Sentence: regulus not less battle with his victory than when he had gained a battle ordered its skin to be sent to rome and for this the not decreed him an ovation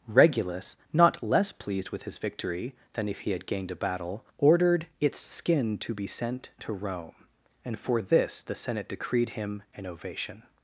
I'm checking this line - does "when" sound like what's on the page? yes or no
no